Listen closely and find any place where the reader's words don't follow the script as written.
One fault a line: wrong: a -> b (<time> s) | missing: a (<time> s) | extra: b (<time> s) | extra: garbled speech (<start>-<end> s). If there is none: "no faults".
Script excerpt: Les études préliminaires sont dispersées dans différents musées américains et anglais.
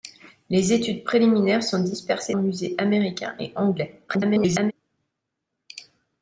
missing: dans différents (2.4 s)
extra: garbled speech (4.1-4.7 s)